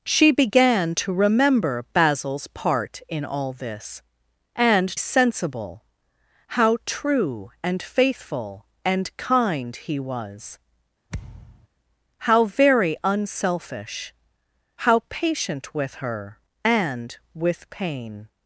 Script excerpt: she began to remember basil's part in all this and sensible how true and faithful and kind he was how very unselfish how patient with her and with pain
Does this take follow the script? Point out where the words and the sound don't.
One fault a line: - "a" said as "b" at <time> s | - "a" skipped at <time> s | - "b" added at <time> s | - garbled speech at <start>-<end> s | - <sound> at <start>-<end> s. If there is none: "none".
- thud at 11.1-11.7 s